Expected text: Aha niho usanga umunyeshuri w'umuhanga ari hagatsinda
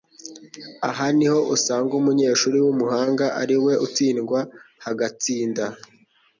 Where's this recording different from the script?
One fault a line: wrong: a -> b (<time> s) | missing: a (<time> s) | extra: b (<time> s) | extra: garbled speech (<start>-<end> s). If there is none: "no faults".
extra: we utsindwa (3.6 s)